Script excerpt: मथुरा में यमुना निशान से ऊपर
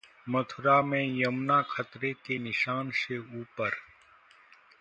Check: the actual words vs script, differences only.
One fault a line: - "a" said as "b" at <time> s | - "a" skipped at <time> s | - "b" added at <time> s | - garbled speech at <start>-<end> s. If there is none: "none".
- "खतरे के" added at 1.7 s